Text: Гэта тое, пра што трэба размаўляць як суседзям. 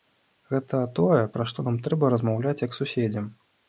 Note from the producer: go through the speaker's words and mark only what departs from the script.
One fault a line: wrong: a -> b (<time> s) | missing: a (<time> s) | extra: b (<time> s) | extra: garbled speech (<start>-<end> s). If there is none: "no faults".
extra: нам (1.7 s)